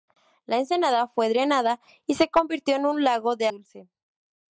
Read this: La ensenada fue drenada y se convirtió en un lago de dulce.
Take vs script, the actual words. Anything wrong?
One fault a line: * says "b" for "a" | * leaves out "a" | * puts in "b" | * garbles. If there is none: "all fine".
all fine